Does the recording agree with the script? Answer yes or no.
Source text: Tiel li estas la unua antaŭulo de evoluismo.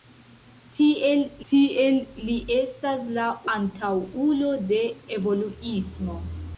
no